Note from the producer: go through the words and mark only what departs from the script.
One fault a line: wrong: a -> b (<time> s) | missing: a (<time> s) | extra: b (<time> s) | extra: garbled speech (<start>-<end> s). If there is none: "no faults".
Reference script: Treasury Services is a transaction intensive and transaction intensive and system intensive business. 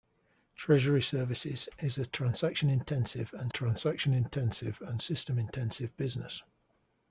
no faults